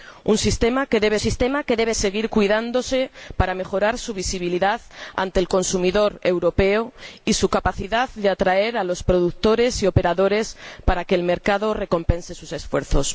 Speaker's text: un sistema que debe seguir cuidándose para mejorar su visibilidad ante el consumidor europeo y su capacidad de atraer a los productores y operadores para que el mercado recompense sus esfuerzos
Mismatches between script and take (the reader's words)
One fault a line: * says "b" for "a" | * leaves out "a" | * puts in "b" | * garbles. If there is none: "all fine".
* puts in "sistema que debe"